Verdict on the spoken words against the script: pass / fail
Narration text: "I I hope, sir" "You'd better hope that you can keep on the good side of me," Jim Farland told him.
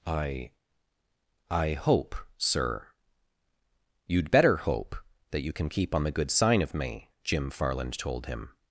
fail